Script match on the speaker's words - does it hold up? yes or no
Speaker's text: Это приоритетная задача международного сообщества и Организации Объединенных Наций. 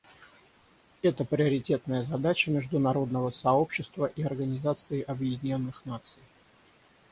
yes